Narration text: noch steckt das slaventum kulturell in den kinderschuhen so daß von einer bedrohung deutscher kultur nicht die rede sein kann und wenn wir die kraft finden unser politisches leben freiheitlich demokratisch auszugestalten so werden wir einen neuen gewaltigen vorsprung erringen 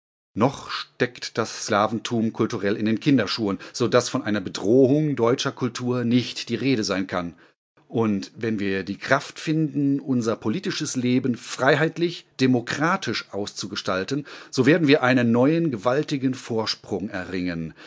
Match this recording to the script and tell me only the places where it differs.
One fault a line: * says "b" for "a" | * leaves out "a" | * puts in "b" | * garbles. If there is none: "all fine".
all fine